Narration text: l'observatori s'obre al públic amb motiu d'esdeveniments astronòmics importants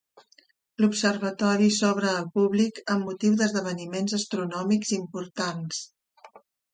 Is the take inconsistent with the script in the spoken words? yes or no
no